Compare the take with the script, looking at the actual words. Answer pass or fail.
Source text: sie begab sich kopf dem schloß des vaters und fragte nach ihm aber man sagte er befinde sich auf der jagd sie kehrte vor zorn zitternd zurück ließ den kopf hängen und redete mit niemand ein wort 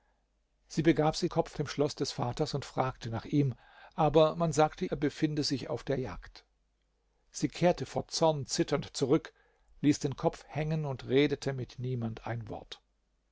pass